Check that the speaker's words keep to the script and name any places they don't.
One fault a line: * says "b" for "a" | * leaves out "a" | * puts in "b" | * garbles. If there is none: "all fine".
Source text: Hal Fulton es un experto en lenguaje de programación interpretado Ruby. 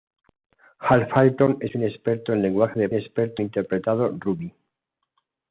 * says "experto" for "programación"